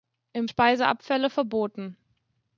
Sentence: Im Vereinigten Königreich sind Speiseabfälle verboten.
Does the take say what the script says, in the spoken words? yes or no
no